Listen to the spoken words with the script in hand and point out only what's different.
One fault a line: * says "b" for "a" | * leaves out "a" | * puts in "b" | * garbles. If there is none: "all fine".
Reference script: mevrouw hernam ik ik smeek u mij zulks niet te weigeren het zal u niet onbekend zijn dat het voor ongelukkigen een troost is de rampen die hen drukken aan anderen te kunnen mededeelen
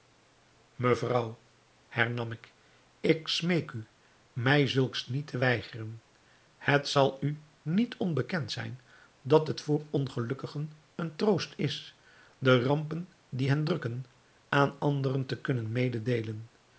all fine